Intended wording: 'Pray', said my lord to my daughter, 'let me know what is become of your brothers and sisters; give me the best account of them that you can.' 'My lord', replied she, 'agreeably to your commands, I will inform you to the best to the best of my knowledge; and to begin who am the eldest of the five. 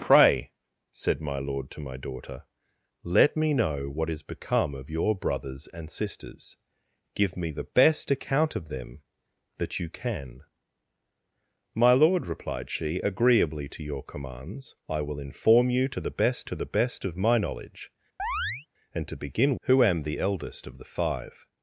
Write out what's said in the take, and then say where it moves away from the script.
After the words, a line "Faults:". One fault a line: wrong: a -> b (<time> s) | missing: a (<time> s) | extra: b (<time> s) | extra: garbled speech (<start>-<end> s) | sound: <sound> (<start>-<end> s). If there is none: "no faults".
'Pray', said my lord to my daughter, 'let me know what is become of your brothers and sisters; give me the best account of them that you can.' 'My lord', replied she, 'agreeably to your commands, I will inform you to the best to the best of my knowledge; and to begin who am the eldest of the five.
Faults:
sound: chirp (18.2-18.7 s)